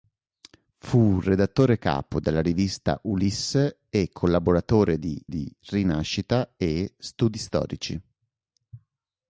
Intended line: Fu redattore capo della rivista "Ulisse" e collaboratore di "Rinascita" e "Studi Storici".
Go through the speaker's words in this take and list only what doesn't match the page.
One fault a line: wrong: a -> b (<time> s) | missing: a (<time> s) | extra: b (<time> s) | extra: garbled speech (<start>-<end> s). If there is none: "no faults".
extra: di (5.3 s)